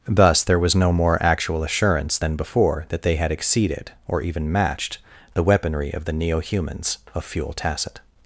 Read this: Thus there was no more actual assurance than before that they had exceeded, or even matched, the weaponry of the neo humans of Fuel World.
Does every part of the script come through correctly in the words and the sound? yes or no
no